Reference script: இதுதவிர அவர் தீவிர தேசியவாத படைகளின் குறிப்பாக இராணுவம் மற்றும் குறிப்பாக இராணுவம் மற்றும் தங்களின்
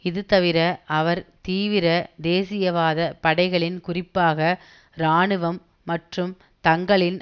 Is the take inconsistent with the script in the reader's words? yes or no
yes